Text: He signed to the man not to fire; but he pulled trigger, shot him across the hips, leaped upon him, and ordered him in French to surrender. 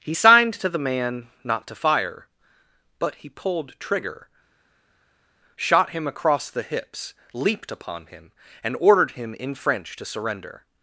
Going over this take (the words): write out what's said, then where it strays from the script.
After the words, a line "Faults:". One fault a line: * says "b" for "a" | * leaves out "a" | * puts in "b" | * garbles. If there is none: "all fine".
He signed to the man not to fire; but he pulled trigger, shot him across the hips, leaped upon him, and ordered him in French to surrender.
Faults:
all fine